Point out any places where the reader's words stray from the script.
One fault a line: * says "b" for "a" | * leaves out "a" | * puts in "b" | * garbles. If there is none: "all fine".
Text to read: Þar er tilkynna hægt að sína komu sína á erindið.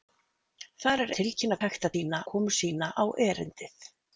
all fine